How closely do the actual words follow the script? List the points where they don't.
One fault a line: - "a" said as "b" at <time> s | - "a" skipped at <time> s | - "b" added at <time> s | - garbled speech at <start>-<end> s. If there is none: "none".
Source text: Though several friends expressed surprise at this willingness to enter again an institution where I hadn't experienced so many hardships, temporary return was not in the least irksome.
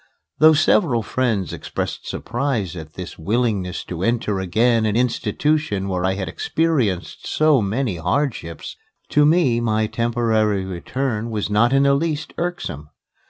- "hadn't" said as "had" at 6.2 s
- "to me my" added at 9.1 s